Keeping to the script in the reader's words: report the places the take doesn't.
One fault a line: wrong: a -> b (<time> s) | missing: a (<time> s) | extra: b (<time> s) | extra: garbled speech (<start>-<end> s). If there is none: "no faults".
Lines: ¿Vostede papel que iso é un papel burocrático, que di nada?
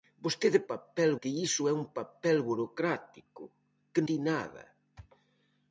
no faults